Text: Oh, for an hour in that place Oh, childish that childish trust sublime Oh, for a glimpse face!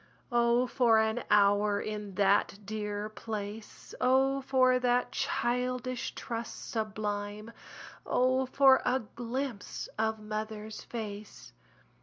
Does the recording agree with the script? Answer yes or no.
no